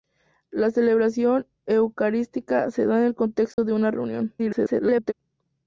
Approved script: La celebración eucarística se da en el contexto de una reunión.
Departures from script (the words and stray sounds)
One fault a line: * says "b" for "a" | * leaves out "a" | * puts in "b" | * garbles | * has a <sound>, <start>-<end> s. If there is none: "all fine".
* has a dropout, 3.5-3.6 s
* garbles